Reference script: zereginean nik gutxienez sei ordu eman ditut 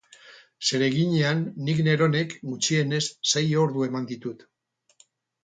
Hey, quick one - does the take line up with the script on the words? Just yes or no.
no